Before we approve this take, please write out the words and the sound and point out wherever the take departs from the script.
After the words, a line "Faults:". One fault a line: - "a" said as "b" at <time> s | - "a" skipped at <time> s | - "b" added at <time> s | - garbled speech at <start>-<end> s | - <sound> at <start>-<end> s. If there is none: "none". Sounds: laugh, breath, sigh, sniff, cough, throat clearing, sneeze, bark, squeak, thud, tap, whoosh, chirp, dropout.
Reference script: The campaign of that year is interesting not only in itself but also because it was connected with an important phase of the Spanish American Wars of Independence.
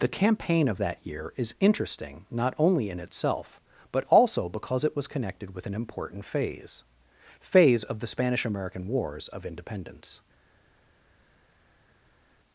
The campaign of that year is interesting not only in itself but also because it was connected with an important phase phase of the Spanish American Wars of Independence.
Faults:
- "phase" added at 7.4 s